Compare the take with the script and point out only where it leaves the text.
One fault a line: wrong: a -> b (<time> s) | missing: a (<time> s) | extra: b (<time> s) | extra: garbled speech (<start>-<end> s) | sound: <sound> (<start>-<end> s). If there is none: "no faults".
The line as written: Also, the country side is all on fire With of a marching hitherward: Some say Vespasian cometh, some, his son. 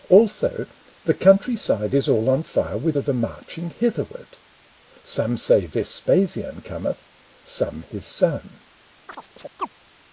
sound: chirp (9.1-9.7 s)